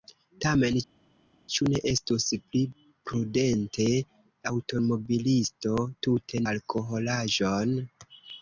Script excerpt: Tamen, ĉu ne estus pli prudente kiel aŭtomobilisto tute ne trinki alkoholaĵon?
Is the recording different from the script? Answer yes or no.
yes